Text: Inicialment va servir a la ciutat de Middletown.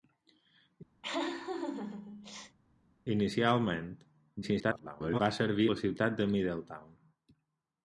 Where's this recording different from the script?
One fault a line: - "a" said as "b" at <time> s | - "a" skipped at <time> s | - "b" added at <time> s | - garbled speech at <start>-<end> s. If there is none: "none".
- garbled speech at 4.4-5.2 s
- "a" skipped at 5.7 s